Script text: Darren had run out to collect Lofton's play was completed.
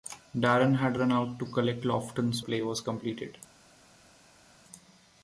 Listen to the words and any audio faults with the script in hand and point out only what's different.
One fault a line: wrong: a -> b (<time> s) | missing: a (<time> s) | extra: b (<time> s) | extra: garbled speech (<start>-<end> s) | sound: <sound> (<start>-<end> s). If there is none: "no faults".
no faults